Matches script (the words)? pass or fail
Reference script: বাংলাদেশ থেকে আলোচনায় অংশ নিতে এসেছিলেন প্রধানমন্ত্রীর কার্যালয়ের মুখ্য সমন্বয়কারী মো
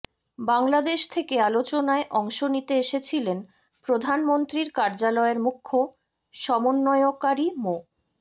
pass